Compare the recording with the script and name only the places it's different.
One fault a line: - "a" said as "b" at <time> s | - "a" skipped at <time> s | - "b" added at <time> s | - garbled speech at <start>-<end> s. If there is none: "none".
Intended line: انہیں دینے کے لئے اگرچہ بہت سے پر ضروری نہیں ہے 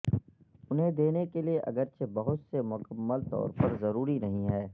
- "مکمل طور" added at 2.6 s